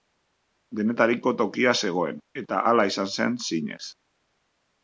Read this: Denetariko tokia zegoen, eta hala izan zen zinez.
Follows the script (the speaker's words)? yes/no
yes